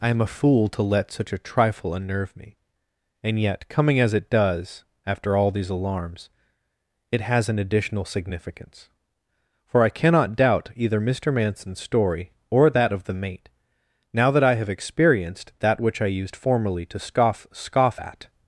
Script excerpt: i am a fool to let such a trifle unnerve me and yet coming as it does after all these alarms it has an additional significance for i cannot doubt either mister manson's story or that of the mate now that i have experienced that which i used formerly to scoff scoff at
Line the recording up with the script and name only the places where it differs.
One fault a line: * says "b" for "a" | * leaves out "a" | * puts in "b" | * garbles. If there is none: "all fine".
all fine